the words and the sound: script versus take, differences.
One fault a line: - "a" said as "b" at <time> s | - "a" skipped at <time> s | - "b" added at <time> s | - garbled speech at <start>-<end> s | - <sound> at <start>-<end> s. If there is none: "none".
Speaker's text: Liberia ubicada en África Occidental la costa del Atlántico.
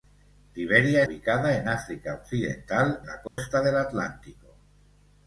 - dropout at 3.3-3.4 s